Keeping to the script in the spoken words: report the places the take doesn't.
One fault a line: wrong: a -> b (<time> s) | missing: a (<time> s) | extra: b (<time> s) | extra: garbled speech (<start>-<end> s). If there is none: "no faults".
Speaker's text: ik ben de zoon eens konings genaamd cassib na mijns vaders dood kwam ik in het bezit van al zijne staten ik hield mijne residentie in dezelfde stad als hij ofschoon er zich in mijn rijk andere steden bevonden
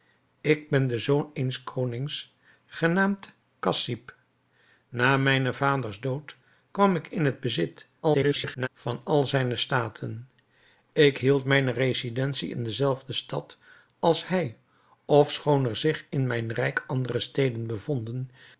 extra: garbled speech (8.0-8.7 s)